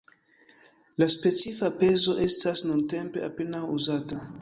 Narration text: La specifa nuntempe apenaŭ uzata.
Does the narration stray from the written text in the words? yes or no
yes